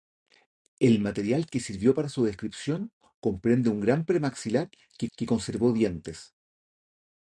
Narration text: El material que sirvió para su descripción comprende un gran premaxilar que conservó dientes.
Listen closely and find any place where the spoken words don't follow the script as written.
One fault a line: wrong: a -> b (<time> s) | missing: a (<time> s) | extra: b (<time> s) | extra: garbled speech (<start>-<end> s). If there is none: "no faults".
extra: que (5.2 s)